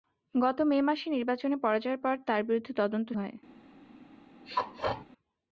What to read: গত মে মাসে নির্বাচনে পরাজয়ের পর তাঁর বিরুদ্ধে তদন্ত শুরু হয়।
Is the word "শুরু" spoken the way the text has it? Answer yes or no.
no